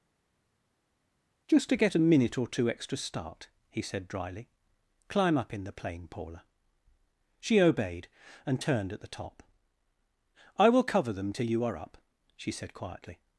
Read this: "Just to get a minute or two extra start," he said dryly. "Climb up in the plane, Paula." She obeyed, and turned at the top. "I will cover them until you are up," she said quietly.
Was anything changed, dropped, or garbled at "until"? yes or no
yes